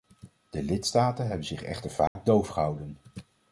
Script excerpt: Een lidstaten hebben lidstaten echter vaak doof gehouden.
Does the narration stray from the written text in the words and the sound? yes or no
yes